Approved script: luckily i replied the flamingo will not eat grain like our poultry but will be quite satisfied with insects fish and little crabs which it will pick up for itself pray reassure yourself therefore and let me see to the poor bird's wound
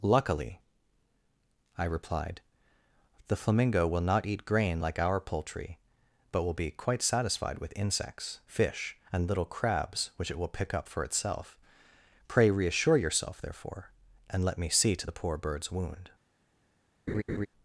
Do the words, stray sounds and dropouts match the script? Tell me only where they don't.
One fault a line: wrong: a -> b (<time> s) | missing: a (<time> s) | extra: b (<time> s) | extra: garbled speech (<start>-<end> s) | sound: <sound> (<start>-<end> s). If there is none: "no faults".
sound: laugh (17.1-17.5 s)